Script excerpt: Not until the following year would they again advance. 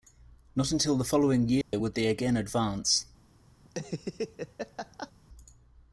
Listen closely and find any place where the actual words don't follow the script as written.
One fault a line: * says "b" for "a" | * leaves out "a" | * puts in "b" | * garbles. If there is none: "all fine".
all fine